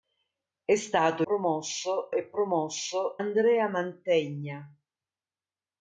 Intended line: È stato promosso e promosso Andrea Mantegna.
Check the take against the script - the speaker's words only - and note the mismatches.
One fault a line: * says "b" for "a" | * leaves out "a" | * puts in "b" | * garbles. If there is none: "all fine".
all fine